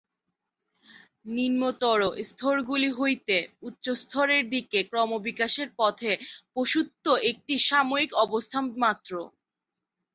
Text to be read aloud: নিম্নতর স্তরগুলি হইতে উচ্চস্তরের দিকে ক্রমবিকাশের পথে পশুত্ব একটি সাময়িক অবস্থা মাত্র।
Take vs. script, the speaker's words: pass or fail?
pass